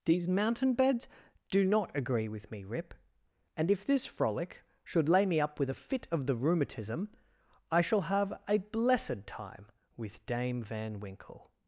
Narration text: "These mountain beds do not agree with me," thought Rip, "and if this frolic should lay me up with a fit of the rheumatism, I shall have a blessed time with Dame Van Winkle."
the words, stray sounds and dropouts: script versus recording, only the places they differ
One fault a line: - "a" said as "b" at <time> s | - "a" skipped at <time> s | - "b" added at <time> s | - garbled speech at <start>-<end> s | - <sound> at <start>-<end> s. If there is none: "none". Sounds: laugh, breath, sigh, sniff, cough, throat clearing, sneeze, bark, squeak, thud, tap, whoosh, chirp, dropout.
- "thought" skipped at 2.6 s